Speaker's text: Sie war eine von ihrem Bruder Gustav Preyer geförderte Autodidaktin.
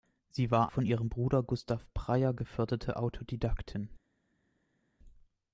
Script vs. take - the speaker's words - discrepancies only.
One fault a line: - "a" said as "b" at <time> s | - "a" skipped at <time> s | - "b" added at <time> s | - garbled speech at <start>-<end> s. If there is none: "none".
- "eine" skipped at 0.7 s